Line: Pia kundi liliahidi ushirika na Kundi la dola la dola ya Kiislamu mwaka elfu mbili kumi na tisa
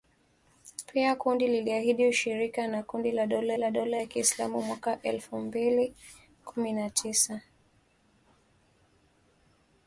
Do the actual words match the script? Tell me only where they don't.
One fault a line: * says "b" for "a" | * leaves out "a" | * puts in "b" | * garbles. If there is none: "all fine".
all fine